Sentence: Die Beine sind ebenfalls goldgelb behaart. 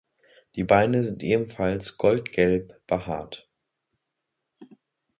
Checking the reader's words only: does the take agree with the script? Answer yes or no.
yes